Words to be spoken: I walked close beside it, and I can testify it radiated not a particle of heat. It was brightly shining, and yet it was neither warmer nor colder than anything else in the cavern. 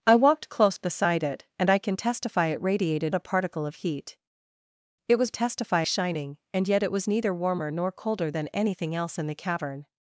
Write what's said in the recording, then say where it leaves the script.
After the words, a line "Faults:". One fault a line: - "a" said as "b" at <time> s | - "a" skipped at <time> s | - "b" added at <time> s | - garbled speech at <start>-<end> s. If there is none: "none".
I walked close beside it, and I can testify it radiated a particle of heat. It was testify shining, and yet it was neither warmer nor colder than anything else in the cavern.
Faults:
- "not" skipped at 3.1 s
- "brightly" said as "testify" at 5.3 s